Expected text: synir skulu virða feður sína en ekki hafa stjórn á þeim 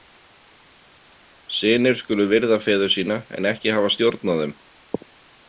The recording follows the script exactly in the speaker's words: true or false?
true